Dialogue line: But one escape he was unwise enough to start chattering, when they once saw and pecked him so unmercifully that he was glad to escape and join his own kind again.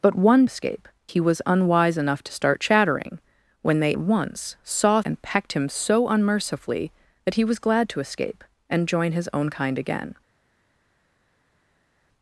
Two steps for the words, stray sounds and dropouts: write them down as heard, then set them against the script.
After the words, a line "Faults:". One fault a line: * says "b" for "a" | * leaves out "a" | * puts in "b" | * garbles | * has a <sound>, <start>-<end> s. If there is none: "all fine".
But one escape he was unwise enough to start chattering, when they once saw and pecked him so unmercifully that he was glad to escape and join his own kind again.
Faults:
all fine